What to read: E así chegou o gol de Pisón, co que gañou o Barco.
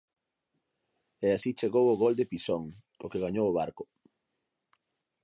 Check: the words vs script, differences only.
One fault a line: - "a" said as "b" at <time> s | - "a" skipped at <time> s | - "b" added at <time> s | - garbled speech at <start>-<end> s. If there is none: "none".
none